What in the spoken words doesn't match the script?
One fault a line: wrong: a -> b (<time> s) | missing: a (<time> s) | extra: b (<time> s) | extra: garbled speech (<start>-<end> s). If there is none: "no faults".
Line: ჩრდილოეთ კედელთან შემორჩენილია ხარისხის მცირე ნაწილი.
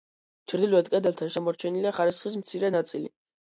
no faults